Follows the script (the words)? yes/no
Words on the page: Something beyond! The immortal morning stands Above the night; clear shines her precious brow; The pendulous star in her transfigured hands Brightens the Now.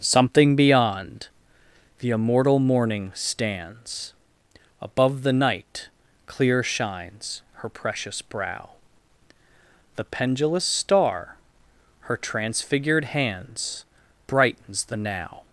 no